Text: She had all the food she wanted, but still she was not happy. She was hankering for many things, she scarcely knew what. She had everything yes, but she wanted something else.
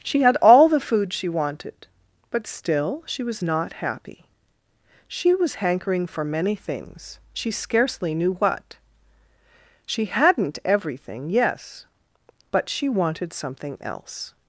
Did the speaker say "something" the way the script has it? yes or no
yes